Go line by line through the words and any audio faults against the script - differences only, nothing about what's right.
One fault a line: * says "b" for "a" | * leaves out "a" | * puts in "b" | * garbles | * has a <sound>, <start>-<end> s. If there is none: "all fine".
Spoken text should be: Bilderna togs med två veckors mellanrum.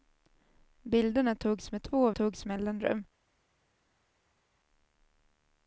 * says "togs" for "veckors"